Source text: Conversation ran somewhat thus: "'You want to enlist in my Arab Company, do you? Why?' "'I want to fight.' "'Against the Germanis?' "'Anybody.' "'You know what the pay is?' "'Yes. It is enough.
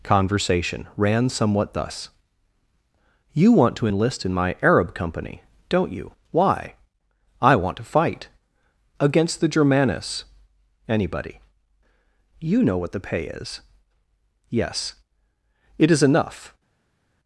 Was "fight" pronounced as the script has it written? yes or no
yes